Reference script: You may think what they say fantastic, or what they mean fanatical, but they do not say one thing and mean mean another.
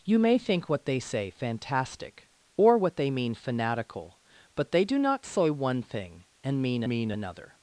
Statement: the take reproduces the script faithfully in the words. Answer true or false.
true